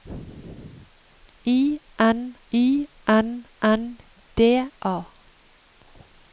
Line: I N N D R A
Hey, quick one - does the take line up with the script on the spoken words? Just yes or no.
no